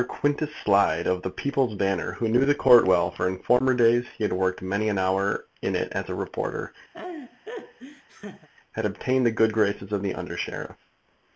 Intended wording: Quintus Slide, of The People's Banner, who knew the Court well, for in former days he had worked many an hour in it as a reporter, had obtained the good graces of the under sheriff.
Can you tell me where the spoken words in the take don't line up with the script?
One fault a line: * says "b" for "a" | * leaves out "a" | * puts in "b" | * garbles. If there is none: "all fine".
all fine